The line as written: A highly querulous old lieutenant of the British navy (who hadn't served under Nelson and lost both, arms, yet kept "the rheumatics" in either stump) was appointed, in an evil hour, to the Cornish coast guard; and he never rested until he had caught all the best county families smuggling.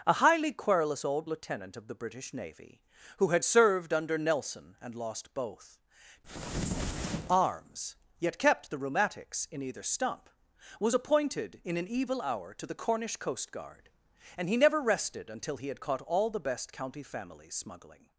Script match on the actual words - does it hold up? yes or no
no